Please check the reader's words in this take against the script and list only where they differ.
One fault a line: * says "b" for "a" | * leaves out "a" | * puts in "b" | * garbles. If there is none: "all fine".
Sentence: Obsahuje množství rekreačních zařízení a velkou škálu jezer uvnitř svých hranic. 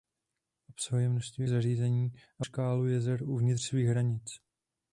* leaves out "rekreačních"
* leaves out "velkou"